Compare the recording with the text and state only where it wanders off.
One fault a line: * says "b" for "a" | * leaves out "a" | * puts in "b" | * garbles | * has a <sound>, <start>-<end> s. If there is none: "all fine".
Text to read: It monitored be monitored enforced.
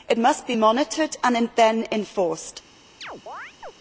* says "must" for "monitored"
* puts in "and then"
* has a chirp, 3.0-3.7 s